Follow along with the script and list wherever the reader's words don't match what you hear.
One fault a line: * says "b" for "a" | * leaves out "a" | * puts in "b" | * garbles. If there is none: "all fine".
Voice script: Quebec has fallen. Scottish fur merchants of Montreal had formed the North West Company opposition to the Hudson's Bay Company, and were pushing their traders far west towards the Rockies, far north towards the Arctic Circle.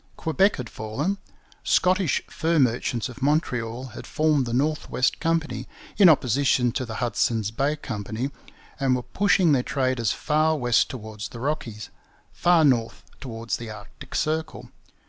* says "had" for "has"
* puts in "in"